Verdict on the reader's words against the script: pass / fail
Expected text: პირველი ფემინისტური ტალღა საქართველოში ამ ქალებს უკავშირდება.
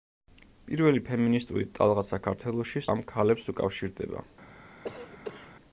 pass